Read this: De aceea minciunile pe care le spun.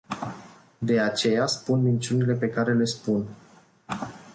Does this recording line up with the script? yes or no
no